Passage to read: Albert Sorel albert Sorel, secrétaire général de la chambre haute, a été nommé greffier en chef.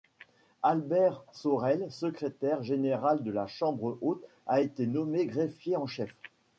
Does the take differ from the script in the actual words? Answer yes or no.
yes